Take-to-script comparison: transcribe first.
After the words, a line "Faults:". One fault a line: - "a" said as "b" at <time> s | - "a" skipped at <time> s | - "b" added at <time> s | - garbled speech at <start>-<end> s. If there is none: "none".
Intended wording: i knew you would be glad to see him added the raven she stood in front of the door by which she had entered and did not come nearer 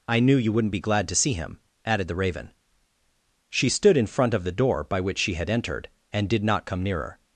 i knew you wouldn't be glad to see him added the raven she stood in front of the door by which she had entered and did not come nearer
Faults:
- "would" said as "wouldn't" at 0.5 s